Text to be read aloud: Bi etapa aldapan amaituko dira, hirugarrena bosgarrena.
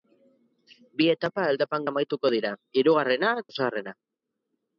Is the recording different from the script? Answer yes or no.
no